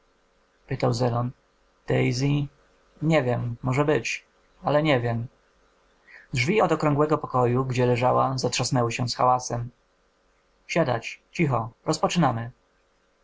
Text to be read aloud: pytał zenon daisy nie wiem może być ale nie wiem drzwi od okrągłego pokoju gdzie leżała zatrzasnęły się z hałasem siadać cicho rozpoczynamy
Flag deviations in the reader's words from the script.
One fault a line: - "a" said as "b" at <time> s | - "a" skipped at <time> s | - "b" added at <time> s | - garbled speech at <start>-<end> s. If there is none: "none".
none